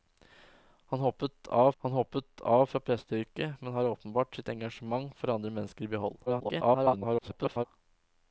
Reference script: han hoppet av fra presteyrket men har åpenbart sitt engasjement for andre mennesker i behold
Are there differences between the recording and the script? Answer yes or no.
yes